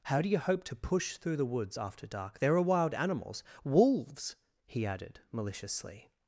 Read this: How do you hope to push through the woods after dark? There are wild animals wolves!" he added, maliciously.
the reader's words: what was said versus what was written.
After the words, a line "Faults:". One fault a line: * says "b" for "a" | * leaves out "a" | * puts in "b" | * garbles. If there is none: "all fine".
How do you hope to push through the woods after dark? There are wild animals wolves!" he added, maliciously.
Faults:
all fine